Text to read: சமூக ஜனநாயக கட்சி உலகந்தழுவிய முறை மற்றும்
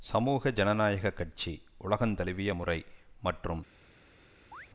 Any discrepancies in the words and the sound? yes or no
yes